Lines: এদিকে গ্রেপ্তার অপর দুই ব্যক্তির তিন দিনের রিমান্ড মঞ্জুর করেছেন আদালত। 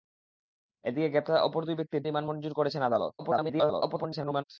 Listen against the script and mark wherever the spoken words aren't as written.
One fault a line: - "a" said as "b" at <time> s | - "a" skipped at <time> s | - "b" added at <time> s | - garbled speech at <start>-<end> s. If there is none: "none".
- "তিন দিনের" skipped at 2.0 s
- garbled speech at 3.2-4.4 s